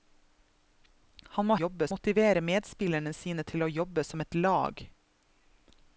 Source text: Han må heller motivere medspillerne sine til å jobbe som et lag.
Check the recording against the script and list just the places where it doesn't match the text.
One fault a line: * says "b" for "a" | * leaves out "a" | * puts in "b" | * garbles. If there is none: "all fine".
* says "jobbe" for "heller"